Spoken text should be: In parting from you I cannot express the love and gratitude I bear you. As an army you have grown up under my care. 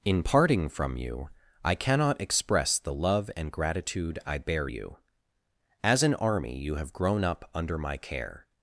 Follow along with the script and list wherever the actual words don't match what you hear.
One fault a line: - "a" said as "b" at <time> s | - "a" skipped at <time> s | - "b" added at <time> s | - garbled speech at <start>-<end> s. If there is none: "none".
none